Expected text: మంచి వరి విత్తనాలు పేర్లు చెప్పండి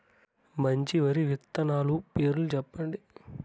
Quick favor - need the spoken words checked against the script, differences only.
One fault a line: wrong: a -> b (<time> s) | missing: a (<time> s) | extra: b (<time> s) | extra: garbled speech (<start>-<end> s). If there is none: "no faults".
no faults